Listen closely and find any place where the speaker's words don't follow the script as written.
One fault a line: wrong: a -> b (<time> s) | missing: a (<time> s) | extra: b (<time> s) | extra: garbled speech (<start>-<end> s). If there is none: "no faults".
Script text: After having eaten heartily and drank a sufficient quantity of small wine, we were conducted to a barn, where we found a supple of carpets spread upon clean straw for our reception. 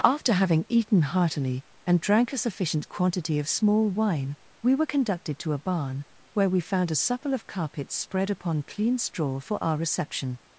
no faults